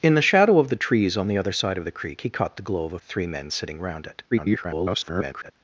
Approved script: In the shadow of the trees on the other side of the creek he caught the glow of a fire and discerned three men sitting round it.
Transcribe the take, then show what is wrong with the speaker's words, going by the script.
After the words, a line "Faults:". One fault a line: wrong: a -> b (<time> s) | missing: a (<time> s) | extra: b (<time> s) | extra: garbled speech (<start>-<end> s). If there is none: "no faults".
In the shadow of the trees on the other side of the creek he caught the glow of a three men sitting round it. [garbled]
Faults:
missing: fire and discerned (3.0 s)
extra: garbled speech (4.3-5.5 s)